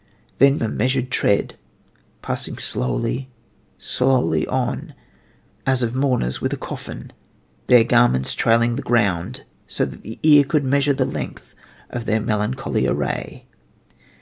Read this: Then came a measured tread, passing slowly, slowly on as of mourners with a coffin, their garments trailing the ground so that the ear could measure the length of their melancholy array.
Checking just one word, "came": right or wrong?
wrong